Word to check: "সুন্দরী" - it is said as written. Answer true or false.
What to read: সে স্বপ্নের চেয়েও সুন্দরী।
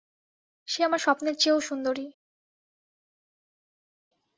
true